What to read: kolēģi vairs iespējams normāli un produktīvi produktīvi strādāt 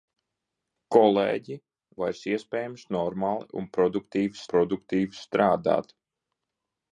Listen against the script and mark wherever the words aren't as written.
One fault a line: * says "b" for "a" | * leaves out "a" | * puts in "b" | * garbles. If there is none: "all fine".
all fine